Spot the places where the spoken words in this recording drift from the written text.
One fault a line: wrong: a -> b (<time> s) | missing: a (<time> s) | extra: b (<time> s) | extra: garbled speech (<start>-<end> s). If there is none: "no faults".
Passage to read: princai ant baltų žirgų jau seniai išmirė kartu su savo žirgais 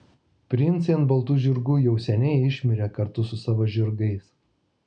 no faults